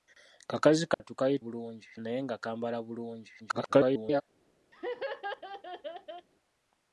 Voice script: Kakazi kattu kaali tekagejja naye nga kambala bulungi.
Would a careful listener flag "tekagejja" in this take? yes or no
yes